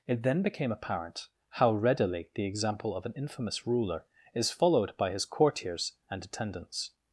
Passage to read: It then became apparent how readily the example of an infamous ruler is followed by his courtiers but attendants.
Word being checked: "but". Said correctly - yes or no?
no